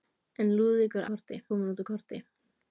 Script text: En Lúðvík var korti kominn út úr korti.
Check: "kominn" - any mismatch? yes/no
no